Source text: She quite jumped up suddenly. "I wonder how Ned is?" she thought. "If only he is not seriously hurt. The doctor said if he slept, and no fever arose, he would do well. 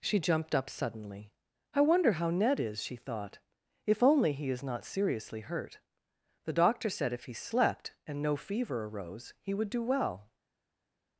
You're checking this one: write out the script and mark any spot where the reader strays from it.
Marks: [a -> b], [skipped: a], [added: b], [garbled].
She [skipped: quite] jumped up suddenly. "I wonder how Ned is?" she thought. "If only he is not seriously hurt. The doctor said if he slept, and no fever arose, he would do well.